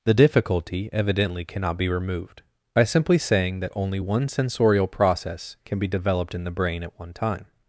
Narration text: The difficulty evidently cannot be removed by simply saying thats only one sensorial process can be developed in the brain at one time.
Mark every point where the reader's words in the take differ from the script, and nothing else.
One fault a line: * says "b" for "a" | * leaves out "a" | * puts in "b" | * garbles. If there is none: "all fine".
* says "that" for "thats"